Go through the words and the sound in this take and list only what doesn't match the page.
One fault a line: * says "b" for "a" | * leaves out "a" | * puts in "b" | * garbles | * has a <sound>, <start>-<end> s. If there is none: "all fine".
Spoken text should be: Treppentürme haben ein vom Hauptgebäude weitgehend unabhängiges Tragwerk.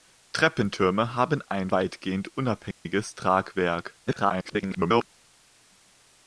* leaves out "vom Hauptgebäude"
* has a dropout, 2.7-2.9 s
* garbles